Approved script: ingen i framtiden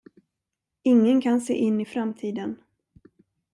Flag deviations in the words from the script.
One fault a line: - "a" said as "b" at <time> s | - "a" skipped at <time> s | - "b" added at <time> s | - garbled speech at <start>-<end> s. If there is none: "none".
- "kan se in" added at 1.2 s